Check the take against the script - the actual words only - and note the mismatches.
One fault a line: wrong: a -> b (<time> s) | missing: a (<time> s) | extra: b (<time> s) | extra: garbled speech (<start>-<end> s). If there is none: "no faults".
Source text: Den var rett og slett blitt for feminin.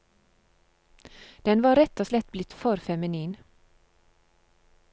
no faults